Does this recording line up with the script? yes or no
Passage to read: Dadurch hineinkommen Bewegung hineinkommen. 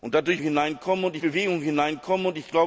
yes